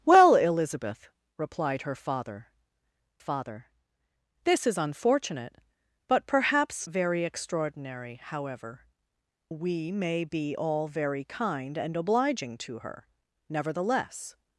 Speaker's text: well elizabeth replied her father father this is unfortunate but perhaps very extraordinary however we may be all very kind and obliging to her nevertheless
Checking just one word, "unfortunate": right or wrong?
right